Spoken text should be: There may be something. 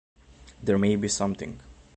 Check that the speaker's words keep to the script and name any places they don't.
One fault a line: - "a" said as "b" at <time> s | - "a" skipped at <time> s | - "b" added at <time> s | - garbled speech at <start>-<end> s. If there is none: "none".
none